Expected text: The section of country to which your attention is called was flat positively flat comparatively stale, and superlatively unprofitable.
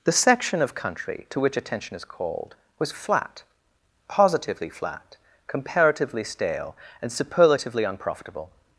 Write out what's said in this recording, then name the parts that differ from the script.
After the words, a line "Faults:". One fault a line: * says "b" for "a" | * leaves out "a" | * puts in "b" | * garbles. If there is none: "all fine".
The section of country to which attention is called was flat positively flat comparatively stale, and superlatively unprofitable.
Faults:
* leaves out "your"